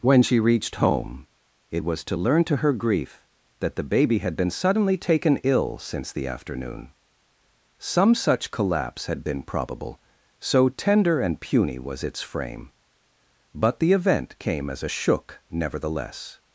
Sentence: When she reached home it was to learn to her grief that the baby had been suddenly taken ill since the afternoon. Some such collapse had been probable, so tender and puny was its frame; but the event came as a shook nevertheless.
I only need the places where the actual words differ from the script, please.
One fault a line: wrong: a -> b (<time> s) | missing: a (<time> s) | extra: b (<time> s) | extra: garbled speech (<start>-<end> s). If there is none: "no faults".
no faults